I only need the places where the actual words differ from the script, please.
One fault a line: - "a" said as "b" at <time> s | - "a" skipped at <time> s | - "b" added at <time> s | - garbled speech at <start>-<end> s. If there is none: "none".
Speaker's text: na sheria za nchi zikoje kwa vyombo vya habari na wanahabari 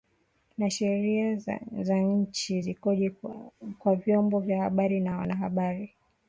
none